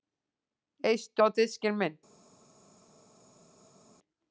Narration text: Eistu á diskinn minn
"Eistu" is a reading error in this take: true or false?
false